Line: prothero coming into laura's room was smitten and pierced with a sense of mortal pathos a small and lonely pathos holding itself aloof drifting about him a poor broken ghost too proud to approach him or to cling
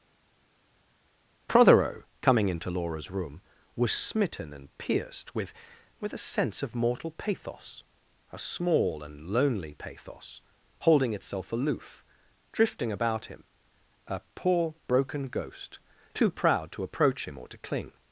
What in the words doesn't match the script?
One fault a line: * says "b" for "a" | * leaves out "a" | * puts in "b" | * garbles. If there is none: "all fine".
* puts in "with"